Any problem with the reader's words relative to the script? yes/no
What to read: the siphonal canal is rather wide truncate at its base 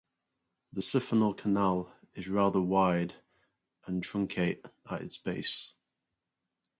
yes